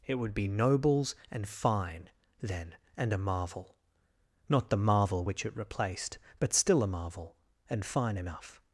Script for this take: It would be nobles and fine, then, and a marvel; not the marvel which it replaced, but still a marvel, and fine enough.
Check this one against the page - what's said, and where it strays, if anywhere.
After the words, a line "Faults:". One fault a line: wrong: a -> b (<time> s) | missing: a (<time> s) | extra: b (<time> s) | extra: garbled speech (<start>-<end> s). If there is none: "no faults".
It would be nobles and fine, then, and a marvel; not the marvel which it replaced, but still a marvel, and fine enough.
Faults:
no faults